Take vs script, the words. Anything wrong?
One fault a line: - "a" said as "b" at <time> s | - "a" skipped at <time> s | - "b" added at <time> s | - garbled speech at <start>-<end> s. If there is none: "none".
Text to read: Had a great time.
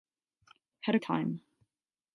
- "great" skipped at 1.0 s